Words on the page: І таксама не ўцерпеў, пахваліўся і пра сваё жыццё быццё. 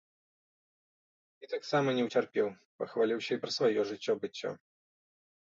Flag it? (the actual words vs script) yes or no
no